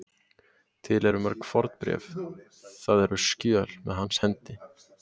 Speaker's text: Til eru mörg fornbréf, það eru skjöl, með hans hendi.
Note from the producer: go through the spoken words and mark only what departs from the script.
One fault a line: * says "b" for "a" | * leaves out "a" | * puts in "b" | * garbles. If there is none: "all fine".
all fine